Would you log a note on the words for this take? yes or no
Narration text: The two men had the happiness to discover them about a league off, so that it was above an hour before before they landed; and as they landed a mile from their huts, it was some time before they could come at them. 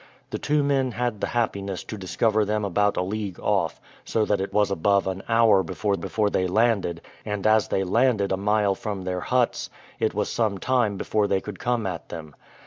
no